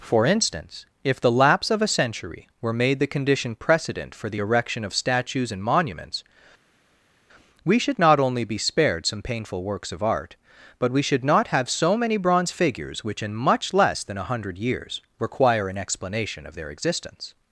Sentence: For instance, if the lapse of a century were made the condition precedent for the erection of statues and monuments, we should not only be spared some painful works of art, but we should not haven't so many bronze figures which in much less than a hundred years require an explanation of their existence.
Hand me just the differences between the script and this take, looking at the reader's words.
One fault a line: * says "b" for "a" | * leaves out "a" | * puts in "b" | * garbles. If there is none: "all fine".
* says "have" for "haven't"